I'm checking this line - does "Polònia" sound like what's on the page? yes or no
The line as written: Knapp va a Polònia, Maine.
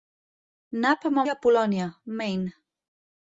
yes